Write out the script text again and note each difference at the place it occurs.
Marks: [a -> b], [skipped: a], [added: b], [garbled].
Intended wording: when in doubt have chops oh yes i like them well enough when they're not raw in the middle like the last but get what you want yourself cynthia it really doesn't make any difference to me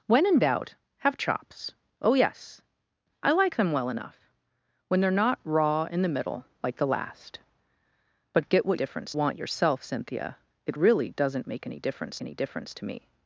when in doubt have chops oh yes i like them well enough when they're not raw in the middle like the last but get what [you -> difference] want yourself cynthia it really doesn't make any difference [added: any difference] to me